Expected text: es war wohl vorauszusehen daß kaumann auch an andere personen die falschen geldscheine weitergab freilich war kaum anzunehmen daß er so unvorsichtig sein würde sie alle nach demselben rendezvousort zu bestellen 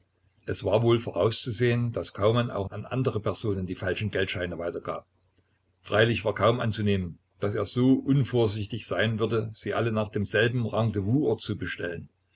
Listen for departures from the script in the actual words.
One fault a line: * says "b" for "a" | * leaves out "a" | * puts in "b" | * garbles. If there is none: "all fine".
all fine